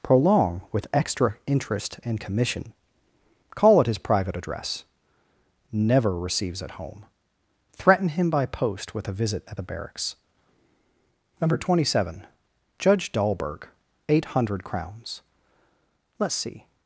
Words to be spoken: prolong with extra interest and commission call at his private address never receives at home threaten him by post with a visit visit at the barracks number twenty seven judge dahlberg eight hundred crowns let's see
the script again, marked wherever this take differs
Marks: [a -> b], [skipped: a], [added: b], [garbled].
prolong with extra interest and commission call at his private address never receives at home threaten him by post with a visit [skipped: visit] at the barracks number twenty seven judge dahlberg eight hundred crowns let's see